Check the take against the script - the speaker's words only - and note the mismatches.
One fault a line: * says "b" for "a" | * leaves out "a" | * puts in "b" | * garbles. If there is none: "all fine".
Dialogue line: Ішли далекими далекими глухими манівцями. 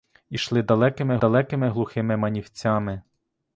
all fine